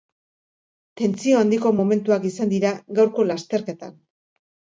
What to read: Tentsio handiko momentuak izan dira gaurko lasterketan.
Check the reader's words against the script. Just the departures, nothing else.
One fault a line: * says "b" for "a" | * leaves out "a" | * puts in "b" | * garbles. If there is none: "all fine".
all fine